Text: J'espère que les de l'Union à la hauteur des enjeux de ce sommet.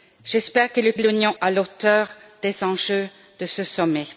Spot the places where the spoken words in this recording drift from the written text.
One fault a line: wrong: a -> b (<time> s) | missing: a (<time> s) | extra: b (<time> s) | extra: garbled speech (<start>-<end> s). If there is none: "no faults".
no faults